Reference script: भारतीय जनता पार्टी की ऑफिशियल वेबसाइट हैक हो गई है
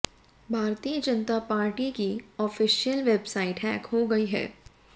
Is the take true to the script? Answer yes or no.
yes